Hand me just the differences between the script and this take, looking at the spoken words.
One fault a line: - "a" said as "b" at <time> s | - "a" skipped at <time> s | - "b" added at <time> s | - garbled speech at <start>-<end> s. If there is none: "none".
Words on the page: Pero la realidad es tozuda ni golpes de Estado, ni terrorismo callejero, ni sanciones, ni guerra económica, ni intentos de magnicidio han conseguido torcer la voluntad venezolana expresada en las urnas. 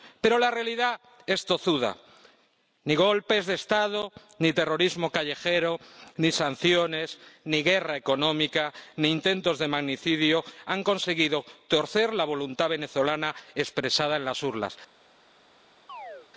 none